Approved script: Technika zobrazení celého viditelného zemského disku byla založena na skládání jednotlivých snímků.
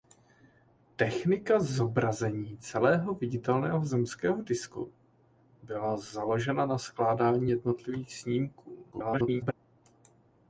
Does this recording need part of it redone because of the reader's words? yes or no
yes